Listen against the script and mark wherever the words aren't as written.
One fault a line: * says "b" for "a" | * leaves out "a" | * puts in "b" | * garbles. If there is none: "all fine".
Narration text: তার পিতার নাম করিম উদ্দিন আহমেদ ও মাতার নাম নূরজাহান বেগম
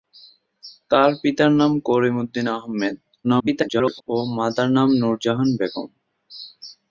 * garbles